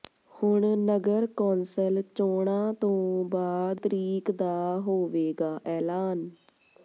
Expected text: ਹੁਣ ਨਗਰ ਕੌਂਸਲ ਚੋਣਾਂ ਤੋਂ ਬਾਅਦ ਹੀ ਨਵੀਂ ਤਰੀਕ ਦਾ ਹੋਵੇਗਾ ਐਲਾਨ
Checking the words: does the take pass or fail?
fail